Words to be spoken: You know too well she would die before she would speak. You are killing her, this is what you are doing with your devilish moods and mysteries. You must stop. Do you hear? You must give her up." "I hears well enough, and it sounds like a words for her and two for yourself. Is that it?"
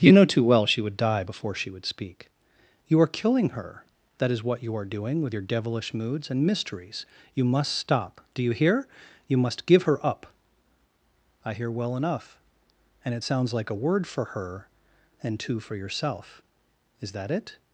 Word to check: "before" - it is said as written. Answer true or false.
true